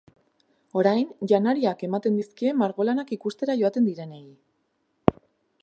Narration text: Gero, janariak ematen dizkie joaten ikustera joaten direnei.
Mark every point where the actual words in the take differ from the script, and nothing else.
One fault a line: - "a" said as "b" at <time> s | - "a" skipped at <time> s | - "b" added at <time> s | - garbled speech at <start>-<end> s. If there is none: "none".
- "Gero" said as "Orain" at 0.8 s
- "joaten" said as "margolanak" at 2.6 s